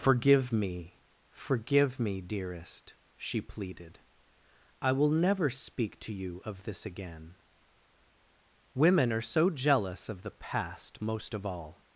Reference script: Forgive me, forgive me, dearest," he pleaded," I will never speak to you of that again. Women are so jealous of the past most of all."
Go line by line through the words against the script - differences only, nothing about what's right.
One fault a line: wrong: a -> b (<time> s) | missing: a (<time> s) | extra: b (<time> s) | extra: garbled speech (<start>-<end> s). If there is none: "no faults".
wrong: he -> she (3.1 s)
wrong: that -> this (6.6 s)